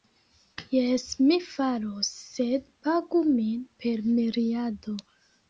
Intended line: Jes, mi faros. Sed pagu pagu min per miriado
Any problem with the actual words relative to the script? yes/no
yes